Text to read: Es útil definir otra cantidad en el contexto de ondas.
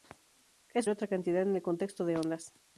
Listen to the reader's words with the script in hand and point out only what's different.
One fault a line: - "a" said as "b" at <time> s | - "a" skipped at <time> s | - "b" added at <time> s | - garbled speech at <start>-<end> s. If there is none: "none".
- "útil definir" skipped at 0.9 s